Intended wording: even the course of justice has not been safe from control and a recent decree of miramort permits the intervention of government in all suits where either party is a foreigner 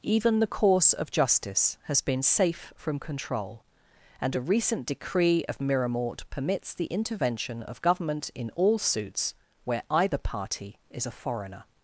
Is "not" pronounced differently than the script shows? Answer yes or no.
yes